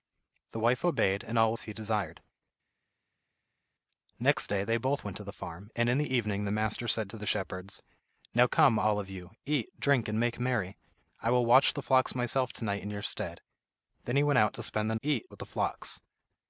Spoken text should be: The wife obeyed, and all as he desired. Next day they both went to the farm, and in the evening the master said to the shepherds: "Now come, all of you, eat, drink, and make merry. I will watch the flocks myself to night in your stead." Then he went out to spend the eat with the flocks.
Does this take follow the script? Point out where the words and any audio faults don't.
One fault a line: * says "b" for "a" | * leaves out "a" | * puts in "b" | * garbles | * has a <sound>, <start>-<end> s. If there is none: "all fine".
all fine